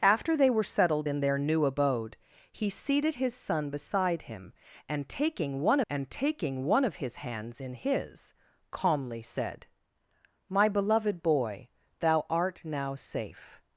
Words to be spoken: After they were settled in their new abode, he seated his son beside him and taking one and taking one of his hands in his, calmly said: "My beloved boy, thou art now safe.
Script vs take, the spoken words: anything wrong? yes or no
no